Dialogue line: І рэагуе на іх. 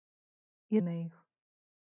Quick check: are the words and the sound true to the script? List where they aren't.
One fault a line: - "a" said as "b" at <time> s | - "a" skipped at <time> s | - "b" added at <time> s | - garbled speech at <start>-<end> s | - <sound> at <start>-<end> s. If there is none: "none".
- "рэагуе" skipped at 0.8 s